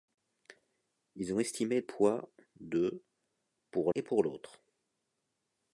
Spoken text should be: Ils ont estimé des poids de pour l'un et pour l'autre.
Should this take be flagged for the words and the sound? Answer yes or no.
yes